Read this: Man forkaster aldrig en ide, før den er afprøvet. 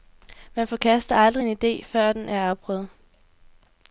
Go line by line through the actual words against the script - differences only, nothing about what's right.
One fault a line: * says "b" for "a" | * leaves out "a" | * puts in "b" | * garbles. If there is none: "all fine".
all fine